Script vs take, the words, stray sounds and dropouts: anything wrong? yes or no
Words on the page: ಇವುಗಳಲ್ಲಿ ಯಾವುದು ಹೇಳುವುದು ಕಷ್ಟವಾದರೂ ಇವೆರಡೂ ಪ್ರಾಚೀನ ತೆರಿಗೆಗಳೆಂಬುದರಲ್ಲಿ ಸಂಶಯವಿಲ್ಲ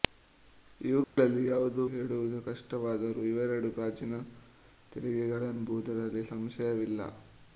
yes